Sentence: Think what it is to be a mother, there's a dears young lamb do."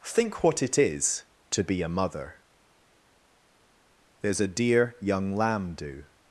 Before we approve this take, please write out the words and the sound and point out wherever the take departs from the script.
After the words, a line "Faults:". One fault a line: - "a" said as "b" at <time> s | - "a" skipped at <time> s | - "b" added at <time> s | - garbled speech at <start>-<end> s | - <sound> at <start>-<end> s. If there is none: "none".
Think what it is to be a mother, there's a dear young lamb do."
Faults:
- "dears" said as "dear" at 4.5 s